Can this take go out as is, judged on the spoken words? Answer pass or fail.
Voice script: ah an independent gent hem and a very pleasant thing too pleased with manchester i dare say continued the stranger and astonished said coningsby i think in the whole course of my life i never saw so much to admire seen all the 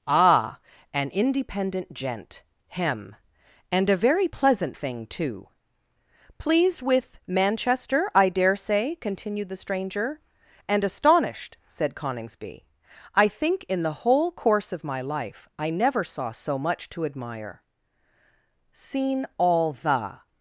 pass